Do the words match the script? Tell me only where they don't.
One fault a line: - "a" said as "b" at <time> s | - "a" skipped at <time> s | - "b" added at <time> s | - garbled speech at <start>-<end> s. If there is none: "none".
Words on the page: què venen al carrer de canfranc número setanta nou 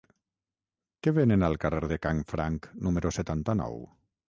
none